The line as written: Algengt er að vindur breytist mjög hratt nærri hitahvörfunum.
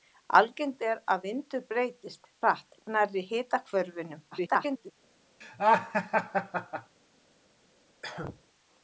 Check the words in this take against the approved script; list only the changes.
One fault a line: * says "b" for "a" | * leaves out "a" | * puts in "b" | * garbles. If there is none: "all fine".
* leaves out "mjög"
* garbles